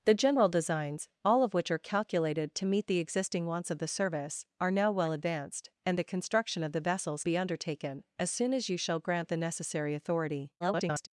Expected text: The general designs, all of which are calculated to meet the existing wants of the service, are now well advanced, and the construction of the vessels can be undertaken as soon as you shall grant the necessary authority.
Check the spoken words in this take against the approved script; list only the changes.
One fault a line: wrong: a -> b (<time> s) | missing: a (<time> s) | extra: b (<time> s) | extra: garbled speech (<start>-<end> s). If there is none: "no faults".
missing: can (7.2 s)
extra: garbled speech (10.6-11.1 s)